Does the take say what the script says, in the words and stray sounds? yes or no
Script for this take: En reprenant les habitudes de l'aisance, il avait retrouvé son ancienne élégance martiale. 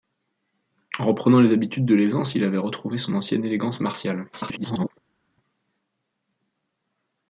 no